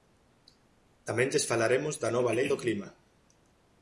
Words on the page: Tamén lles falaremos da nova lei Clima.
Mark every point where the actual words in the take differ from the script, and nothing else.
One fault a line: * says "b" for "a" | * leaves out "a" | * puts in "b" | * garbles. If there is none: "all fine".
* puts in "do"